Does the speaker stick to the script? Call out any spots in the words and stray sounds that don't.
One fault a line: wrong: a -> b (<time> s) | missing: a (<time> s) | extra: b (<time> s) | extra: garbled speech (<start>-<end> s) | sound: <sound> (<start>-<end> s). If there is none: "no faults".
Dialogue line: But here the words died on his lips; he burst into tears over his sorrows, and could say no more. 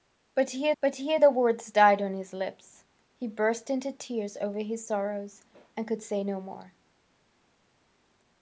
extra: but here (0.8 s)